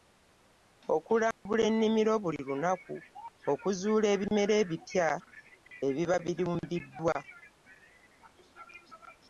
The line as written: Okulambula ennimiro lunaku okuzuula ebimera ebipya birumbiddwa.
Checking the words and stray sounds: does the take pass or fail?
fail